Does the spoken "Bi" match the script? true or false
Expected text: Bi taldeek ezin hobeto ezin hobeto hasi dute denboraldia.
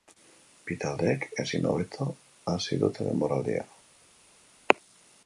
true